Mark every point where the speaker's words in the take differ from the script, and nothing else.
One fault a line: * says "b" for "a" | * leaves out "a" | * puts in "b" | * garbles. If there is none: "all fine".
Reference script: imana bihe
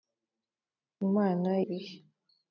all fine